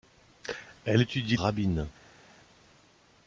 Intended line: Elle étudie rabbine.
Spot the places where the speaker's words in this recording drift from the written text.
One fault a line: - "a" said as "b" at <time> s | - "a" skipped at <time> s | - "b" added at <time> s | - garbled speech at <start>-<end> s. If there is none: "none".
none